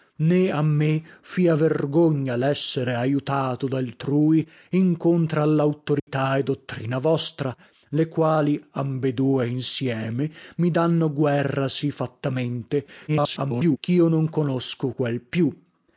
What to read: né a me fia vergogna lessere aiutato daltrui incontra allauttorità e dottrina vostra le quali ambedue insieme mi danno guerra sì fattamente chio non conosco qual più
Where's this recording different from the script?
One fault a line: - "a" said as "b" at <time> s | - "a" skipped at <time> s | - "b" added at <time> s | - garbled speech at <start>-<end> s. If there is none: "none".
- garbled speech at 13.1-13.8 s